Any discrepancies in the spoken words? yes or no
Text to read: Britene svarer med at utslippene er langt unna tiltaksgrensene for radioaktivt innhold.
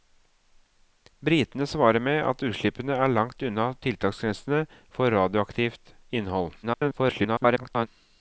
yes